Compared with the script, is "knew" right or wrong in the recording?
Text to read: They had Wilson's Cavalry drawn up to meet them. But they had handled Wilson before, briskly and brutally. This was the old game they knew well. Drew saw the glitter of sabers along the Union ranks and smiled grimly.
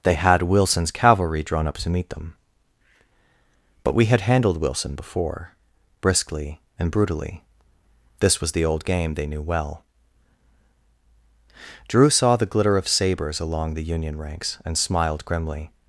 right